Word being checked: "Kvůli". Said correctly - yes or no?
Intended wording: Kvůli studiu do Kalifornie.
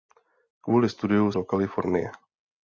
yes